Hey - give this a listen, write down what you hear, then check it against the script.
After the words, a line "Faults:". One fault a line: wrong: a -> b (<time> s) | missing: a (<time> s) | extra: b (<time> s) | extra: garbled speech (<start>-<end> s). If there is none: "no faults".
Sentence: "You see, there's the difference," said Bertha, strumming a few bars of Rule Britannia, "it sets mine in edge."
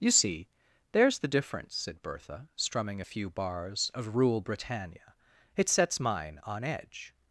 "You see, there's the difference," said Bertha, strumming a few bars of Rule Britannia, "it sets mine on edge."
Faults:
wrong: in -> on (6.4 s)